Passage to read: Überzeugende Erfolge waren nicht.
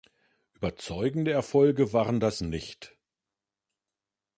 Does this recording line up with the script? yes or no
no